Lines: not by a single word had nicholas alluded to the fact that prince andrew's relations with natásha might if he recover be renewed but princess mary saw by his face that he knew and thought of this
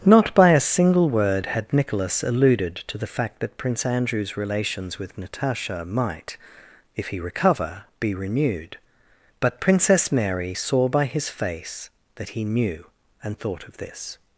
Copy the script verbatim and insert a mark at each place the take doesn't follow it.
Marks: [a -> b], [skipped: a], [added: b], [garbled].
not by a single word had nicholas alluded to the fact that prince andrew's relations with natásha might if he recover be renewed but princess mary saw by his face that he knew and thought of this